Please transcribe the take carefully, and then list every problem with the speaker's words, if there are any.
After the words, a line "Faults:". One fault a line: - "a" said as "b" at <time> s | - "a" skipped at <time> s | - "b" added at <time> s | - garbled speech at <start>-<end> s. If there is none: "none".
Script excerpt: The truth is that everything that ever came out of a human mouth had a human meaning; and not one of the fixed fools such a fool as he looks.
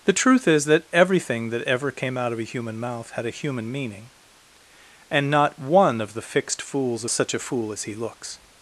The truth is that everything that ever came out of a human mouth had a human meaning; and not one of the fixed fools such a fool as he looks.
Faults:
none